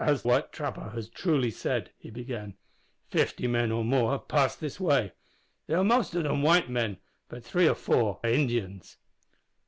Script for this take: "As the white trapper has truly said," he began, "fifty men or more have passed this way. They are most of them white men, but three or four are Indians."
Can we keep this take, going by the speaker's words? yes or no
no